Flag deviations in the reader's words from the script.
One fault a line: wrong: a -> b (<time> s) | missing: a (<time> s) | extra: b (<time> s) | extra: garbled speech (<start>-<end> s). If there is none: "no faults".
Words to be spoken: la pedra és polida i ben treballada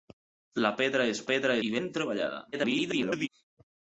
wrong: polida -> pedra (1.3 s)
extra: garbled speech (2.5-3.3 s)